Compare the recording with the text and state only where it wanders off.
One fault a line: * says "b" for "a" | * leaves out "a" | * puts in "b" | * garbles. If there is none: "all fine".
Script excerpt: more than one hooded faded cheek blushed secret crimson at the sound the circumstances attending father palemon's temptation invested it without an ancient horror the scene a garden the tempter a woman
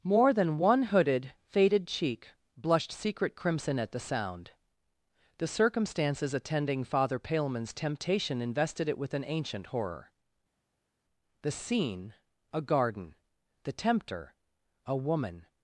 * says "with" for "without"